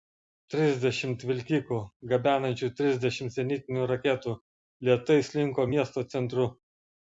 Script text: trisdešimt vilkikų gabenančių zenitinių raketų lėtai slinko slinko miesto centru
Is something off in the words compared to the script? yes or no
yes